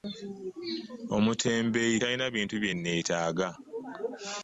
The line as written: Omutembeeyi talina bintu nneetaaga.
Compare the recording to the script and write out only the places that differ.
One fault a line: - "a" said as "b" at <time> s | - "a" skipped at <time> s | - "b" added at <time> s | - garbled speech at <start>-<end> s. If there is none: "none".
- "bye" added at 2.6 s